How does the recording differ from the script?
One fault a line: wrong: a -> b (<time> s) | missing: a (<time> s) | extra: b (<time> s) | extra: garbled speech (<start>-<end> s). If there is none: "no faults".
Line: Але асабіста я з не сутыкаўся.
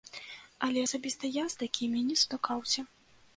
extra: такімі (1.6 s)